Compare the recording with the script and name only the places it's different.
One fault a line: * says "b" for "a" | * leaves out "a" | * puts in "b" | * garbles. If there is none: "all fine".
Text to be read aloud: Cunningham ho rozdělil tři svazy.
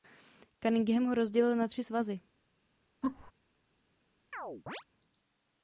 * puts in "na"